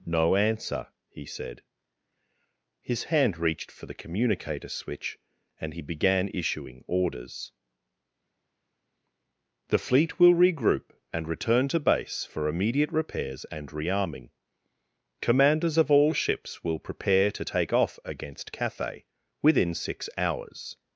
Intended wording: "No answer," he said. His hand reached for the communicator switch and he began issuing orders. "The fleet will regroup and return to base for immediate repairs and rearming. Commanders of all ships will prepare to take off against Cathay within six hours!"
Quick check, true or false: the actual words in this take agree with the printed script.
true